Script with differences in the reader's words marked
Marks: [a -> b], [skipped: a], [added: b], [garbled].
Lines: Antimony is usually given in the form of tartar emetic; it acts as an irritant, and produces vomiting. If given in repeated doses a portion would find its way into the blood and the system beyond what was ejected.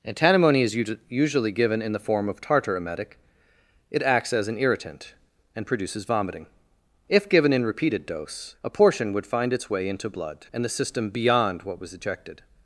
Antimony is usually given in the form of tartar emetic; it acts as an irritant, and produces vomiting. If given in repeated [doses -> dose] a portion would find its way into [skipped: the] blood and the system beyond what was ejected.